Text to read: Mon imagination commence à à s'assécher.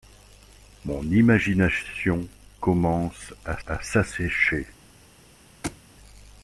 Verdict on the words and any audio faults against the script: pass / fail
fail